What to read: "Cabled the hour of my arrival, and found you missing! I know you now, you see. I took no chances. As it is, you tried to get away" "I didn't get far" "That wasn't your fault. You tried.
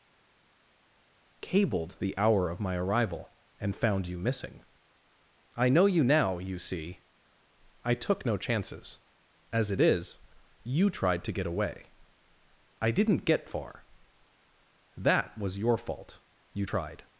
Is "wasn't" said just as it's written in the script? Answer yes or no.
no